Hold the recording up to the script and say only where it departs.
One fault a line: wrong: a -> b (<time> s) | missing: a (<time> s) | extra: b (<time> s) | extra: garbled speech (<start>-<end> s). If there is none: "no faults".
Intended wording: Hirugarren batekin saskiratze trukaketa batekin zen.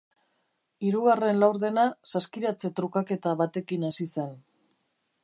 wrong: batekin -> laurdena (1.4 s)
extra: hasi (3.9 s)